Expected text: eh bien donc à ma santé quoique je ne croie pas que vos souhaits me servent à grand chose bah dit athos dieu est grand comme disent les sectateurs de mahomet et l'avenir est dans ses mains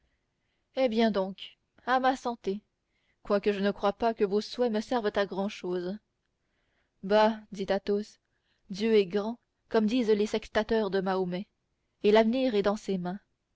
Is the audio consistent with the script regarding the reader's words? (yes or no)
yes